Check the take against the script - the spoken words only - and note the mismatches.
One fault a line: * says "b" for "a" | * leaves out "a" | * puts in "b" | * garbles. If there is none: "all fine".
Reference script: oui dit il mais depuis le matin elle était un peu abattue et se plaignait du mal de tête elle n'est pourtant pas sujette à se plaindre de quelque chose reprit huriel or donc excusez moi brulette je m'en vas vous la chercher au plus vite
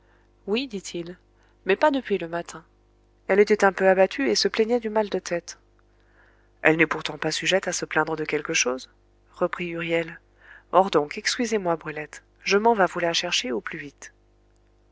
* puts in "pas"